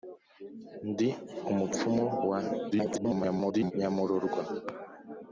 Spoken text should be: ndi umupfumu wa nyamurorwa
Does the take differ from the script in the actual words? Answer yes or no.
yes